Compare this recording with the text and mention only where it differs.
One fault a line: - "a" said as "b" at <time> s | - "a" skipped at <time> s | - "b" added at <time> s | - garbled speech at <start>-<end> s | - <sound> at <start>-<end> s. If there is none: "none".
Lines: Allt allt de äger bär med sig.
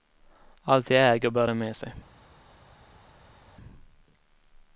- "allt" skipped at 0.9 s
- "de" added at 1.4 s